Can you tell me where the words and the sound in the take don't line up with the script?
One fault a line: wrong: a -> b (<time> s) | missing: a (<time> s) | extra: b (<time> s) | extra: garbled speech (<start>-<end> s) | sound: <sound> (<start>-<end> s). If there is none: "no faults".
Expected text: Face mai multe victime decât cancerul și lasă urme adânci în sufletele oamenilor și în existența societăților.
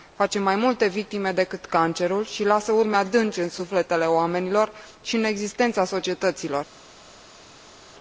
no faults